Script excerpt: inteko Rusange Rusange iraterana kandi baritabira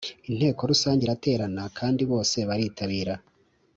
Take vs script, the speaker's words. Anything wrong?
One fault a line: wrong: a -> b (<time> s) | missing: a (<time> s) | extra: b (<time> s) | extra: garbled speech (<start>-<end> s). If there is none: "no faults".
missing: Rusange (1.0 s)
extra: bose (2.1 s)